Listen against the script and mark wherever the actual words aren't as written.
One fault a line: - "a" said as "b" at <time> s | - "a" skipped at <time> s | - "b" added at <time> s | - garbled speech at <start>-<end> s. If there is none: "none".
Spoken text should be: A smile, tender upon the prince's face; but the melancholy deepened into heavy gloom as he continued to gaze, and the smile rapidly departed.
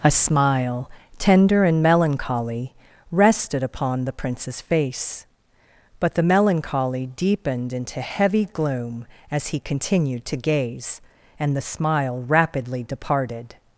- "and melancholy rested" added at 1.6 s